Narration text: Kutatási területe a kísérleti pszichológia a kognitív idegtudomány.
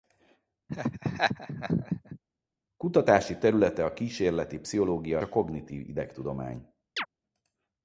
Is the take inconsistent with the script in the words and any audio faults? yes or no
yes